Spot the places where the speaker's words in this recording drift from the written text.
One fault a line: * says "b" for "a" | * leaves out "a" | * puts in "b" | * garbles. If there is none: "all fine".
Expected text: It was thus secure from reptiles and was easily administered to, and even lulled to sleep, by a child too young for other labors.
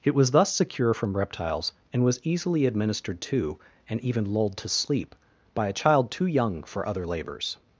all fine